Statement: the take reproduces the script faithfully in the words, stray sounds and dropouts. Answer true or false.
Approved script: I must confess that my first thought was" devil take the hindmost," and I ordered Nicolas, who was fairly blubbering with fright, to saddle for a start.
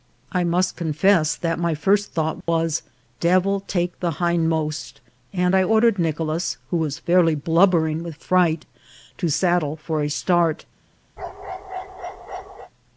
false